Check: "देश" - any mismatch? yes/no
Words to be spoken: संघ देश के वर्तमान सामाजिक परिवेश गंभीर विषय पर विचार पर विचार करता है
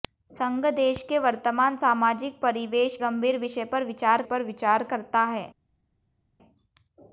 no